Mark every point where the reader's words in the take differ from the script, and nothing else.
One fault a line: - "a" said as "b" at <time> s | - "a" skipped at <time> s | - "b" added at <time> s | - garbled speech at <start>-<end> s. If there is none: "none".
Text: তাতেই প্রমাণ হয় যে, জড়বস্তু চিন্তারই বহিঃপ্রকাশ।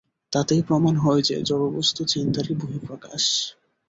none